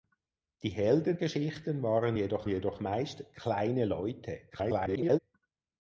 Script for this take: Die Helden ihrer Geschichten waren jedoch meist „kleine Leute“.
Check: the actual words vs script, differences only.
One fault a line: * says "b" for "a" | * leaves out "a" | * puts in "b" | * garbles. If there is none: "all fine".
* leaves out "ihrer"
* puts in "jedoch"
* garbles